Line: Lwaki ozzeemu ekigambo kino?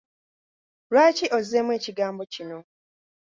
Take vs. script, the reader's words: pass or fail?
pass